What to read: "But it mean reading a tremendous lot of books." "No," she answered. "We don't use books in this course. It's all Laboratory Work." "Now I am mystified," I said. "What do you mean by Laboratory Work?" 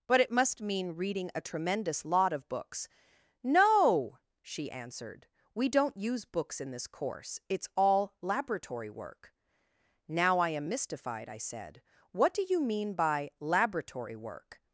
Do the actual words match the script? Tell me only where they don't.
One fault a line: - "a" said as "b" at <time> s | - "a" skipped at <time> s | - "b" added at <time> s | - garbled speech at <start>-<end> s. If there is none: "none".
- "must" added at 0.3 s